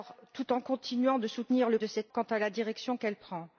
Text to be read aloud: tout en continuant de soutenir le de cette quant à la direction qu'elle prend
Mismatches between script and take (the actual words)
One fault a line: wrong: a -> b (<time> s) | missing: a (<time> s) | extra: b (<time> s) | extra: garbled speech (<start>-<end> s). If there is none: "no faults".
no faults